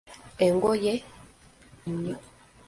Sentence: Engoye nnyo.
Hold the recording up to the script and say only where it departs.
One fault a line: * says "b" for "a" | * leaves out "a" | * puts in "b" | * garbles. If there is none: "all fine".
all fine